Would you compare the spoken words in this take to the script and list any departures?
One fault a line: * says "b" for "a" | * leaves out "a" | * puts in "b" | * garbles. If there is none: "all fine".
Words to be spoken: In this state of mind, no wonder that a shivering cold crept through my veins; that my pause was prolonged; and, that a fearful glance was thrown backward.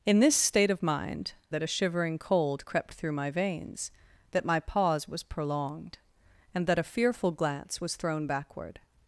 * leaves out "no wonder"